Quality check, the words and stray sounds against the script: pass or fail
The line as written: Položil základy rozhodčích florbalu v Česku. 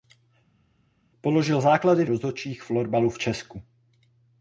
pass